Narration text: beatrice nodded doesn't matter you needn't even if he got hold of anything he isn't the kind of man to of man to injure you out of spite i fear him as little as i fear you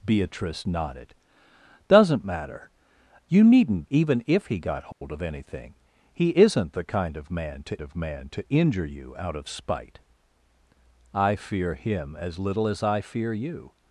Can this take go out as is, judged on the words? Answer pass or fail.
pass